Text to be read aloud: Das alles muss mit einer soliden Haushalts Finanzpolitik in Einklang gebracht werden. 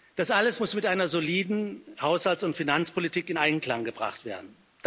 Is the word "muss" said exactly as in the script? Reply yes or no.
yes